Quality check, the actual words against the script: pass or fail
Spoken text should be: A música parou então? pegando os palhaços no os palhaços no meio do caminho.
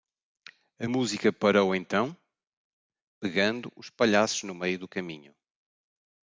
fail